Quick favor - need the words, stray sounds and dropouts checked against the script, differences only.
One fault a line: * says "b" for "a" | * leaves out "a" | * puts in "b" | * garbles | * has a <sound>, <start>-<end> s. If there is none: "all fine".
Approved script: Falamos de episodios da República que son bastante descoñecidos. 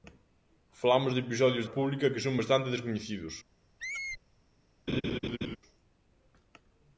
* leaves out "da"
* has a squeak, 3.8-4.2 s
* has a laugh, 4.9-5.6 s